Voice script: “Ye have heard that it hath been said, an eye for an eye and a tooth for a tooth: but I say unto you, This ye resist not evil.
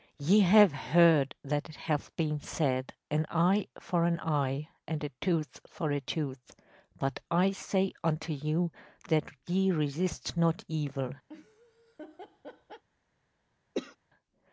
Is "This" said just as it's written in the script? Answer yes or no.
no